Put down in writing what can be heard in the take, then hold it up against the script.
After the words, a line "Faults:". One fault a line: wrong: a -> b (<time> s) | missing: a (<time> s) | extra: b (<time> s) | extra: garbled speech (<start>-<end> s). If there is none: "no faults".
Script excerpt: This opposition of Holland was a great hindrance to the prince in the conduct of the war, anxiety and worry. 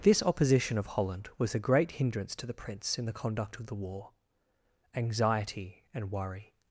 This opposition of Holland was a great hindrance to the prince in the conduct of the war, anxiety and worry.
Faults:
no faults